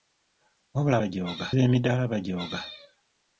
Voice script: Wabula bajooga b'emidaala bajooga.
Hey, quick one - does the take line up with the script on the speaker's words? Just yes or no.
yes